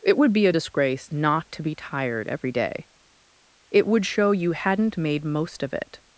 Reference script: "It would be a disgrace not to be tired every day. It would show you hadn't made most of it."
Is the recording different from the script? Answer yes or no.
no